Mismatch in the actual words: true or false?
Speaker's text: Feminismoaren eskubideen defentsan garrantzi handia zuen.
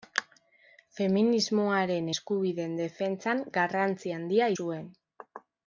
false